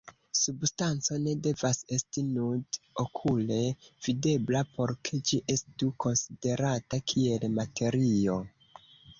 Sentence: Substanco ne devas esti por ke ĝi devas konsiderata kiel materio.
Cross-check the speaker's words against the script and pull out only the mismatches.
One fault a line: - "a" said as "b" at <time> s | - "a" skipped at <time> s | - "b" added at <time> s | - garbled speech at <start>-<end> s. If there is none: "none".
- "nud okule videbla" added at 2.4 s
- "devas" said as "estu" at 5.6 s